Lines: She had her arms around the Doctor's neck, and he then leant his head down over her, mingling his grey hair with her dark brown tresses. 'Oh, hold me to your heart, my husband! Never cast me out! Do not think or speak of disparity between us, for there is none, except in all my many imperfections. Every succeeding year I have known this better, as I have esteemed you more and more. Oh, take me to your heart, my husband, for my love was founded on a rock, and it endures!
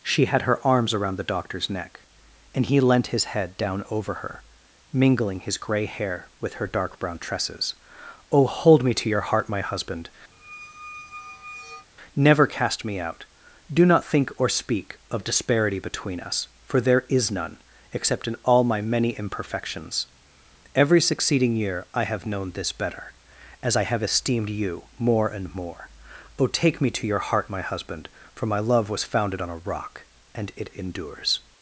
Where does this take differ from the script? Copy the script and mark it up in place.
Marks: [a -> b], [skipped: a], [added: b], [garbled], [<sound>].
She had her arms around the Doctor's neck, and he [skipped: then] leant his head down over her, mingling his grey hair with her dark brown tresses. 'Oh, hold me to your heart, my husband! [squeak] Never cast me out! Do not think or speak of disparity between us, for there is none, except in all my many imperfections. Every succeeding year I have known this better, as I have esteemed you more and more. Oh, take me to your heart, my husband, for my love was founded on a rock, and it endures!